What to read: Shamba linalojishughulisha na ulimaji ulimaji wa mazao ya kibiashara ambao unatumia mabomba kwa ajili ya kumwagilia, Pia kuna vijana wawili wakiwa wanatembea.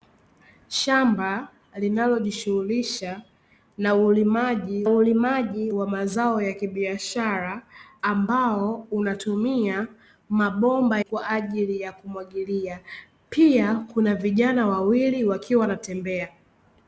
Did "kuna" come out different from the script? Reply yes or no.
no